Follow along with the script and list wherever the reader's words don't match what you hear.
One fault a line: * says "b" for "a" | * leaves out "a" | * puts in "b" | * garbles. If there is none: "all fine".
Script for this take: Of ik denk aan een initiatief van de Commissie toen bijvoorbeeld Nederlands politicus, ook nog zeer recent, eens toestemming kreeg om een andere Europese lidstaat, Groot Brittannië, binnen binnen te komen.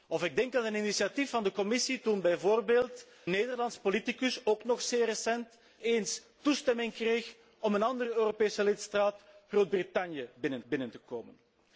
all fine